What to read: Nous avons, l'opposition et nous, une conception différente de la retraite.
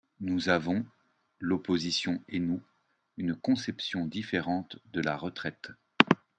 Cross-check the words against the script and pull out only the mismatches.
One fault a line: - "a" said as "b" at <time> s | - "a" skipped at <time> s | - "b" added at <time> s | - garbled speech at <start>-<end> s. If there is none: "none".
none